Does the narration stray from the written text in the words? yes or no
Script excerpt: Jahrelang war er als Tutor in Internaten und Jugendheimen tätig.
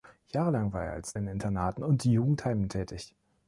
yes